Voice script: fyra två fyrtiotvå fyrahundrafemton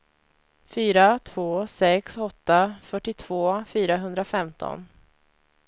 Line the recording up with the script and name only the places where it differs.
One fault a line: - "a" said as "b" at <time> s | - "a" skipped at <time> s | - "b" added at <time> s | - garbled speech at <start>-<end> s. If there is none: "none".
- "sex åtta" added at 1.7 s